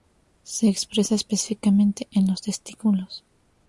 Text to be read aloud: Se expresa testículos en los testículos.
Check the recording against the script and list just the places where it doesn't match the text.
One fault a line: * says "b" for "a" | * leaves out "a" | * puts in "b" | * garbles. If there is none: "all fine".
* says "específicamente" for "testículos"